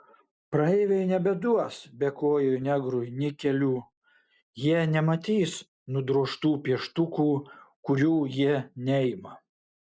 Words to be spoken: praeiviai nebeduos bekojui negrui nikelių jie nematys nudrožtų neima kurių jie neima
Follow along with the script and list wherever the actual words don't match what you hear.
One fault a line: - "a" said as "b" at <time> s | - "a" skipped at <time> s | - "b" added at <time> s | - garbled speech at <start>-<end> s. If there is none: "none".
- "neima" said as "pieštukų" at 6.7 s